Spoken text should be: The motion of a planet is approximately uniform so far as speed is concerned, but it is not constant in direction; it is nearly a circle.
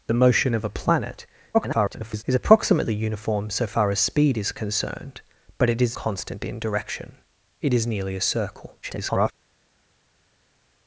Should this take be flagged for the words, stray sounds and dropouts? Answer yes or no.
yes